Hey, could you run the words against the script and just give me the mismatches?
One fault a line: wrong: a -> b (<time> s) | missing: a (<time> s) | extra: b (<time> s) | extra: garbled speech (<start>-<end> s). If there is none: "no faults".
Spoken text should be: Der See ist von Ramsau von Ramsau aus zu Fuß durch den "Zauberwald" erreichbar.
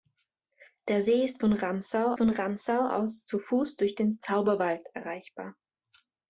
no faults